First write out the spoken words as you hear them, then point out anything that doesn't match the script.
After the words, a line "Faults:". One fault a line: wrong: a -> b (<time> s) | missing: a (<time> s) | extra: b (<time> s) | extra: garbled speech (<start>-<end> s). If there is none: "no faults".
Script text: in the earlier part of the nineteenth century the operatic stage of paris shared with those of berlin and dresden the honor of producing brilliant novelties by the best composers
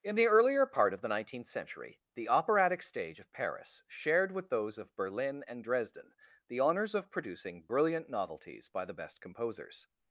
in the earlier part of the nineteenth century the operatic stage of paris shared with those of berlin and dresden the honors of producing brilliant novelties by the best composers
Faults:
wrong: honor -> honors (6.6 s)